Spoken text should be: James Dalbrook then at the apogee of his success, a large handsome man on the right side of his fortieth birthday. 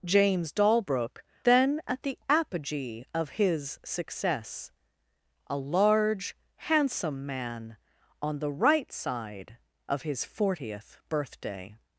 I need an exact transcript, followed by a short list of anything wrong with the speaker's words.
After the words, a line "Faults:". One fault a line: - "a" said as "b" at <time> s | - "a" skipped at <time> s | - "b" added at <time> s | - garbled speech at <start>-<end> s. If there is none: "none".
James Dalbrook then at the apogee of his success, a large handsome man on the right side of his fortieth birthday.
Faults:
none